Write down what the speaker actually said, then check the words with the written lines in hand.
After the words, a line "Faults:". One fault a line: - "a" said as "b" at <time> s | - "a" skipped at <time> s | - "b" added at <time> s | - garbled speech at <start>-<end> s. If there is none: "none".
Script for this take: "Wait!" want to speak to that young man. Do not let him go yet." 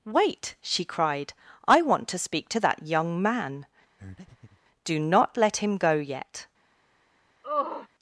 "Wait!" she cried, "I want to speak to that young man. Do not let him go yet."
Faults:
- "she cried I" added at 0.6 s